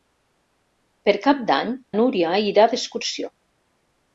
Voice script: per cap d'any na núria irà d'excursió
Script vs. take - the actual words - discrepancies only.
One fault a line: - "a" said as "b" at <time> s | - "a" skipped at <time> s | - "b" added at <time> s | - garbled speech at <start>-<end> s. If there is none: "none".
- "na" skipped at 1.7 s